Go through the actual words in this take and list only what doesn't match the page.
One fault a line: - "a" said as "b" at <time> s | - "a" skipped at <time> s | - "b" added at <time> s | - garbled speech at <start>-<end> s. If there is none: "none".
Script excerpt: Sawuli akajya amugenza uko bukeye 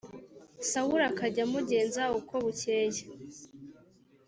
none